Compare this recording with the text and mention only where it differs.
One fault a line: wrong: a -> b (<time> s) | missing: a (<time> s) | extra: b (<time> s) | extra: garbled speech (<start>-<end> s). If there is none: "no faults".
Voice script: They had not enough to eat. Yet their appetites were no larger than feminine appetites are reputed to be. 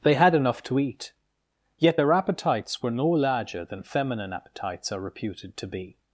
missing: not (0.3 s)